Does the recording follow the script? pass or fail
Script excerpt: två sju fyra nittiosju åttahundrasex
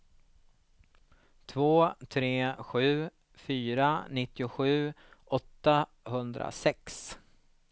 fail